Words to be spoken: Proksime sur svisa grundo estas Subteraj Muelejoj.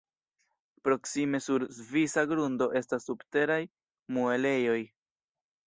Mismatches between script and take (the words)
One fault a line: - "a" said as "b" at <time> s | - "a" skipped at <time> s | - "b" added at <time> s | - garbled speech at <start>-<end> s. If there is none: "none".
none